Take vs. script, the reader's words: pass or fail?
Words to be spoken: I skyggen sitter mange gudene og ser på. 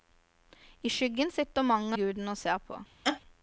pass